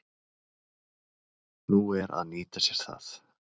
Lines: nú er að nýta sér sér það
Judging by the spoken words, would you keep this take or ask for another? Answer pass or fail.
fail